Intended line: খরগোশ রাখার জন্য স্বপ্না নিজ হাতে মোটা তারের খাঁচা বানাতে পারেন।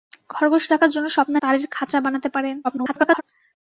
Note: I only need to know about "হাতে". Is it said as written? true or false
false